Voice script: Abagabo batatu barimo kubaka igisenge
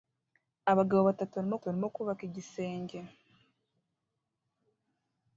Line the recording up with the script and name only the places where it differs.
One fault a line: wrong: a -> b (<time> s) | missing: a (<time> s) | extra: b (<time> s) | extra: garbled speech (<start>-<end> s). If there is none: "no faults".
extra: barimo (1.6 s)